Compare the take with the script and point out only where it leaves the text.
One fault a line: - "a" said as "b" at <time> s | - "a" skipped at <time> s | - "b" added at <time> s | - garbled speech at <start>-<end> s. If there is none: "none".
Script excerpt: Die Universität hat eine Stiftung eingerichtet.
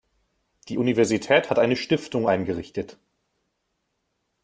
none